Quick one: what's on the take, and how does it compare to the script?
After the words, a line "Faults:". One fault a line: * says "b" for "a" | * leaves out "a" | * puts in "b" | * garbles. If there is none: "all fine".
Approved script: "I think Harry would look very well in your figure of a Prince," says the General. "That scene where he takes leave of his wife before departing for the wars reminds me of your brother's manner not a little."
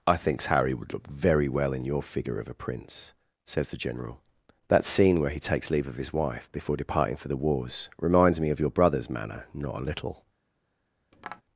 "I thinks Harry would look very well in your figure of a Prince," says the General. "That scene where he takes leave of his wife before departing for the wars reminds me of your brother's manner not a little."
Faults:
* says "thinks" for "think"